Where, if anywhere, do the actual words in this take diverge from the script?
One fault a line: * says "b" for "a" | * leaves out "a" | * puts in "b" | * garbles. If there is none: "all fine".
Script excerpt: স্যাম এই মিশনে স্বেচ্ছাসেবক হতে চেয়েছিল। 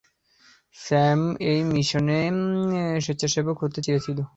all fine